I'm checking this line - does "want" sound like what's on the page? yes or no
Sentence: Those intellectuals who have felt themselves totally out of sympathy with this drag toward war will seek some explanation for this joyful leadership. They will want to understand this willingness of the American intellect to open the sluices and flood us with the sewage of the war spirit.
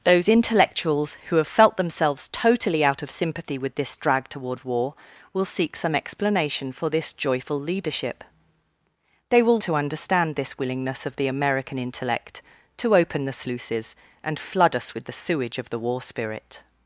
no